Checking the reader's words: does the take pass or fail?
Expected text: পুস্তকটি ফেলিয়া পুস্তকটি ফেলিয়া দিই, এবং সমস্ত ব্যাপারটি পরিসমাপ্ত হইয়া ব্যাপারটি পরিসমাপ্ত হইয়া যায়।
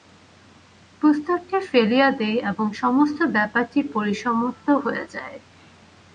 fail